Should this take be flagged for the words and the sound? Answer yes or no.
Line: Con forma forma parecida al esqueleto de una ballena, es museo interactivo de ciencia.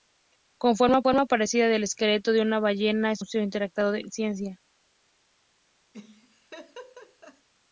yes